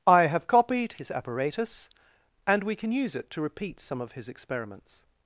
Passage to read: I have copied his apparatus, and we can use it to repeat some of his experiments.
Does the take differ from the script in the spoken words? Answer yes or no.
no